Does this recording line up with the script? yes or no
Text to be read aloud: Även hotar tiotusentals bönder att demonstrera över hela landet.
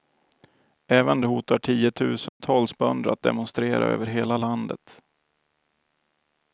yes